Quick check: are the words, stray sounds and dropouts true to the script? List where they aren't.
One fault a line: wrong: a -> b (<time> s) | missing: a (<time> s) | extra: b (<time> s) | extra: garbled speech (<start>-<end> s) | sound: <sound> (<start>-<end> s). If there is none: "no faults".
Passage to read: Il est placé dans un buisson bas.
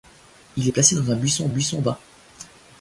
extra: buisson (1.5 s)